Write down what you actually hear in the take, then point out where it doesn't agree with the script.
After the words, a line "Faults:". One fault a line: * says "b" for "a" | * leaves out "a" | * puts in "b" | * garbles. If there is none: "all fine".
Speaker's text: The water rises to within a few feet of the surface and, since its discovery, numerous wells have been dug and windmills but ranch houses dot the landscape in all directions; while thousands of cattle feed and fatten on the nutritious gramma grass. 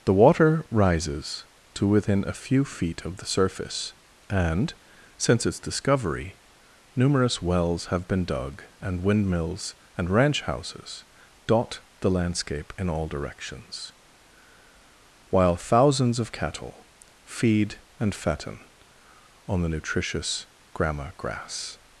The water rises to within a few feet of the surface and, since its discovery, numerous wells have been dug and windmills and ranch houses dot the landscape in all directions; while thousands of cattle feed and fatten on the nutritious gramma grass.
Faults:
* says "and" for "but"